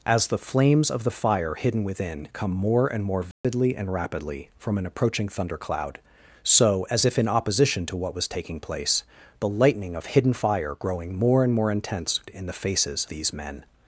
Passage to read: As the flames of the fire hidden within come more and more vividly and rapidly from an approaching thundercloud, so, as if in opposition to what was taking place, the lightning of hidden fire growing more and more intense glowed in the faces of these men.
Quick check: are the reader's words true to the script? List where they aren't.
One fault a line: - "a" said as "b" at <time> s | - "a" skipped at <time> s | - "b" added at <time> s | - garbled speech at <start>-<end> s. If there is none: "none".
- "glowed" skipped at 12.2 s
- "of" skipped at 13.1 s